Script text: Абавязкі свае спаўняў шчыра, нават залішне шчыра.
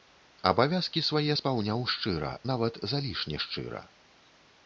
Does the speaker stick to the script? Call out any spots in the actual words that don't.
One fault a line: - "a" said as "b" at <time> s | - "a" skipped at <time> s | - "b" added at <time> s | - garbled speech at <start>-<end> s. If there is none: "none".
none